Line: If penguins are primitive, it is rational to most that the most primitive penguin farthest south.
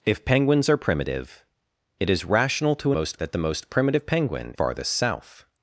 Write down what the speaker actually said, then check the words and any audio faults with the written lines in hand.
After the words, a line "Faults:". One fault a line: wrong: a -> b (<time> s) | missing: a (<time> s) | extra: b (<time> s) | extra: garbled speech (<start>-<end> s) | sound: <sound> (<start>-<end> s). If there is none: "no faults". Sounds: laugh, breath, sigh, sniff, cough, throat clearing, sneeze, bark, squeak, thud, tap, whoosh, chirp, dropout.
If penguins are primitive, it is rational to most that the most primitive penguin farthest south.
Faults:
no faults